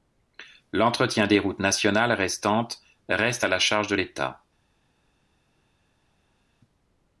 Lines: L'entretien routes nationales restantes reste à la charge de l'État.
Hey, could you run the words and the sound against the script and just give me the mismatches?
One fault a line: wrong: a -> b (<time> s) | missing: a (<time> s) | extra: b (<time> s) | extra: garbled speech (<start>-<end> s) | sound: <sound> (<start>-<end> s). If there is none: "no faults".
extra: des (1.3 s)